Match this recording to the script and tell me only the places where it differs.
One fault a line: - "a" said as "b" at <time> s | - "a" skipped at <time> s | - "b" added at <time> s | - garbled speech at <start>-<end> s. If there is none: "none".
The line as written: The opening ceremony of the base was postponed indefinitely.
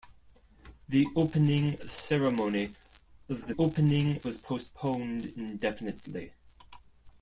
- "base" said as "opening" at 3.6 s